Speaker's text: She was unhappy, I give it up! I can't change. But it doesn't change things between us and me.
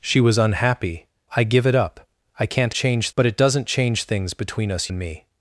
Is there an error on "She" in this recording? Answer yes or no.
no